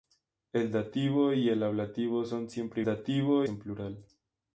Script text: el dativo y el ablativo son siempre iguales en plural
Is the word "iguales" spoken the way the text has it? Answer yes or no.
no